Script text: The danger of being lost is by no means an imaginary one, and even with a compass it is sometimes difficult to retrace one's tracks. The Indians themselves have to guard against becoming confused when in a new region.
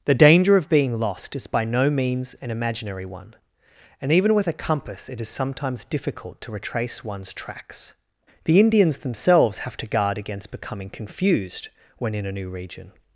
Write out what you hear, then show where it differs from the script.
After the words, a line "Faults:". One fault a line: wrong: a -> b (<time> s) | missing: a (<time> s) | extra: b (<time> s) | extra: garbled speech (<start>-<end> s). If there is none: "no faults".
The danger of being lost is by no means an imaginary one, and even with a compass it is sometimes difficult to retrace one's tracks. The Indians themselves have to guard against becoming confused when in a new region.
Faults:
no faults